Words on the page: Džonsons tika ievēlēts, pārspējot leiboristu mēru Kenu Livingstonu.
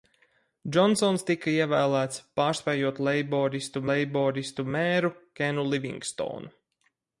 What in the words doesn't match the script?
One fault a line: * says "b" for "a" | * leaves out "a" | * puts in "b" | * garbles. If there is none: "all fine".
* puts in "leiboristu"